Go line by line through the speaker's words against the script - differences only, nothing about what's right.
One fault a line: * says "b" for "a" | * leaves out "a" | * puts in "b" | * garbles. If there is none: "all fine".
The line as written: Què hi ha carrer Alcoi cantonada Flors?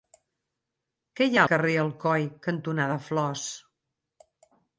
all fine